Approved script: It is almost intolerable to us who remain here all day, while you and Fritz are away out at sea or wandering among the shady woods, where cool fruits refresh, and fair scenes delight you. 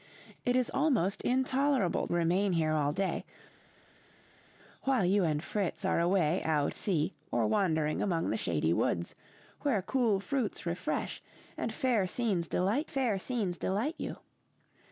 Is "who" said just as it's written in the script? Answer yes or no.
no